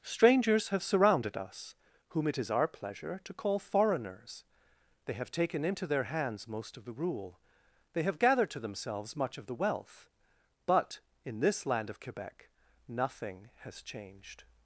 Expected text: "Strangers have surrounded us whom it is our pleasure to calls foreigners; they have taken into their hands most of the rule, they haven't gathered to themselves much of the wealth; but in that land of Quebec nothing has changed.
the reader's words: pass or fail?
fail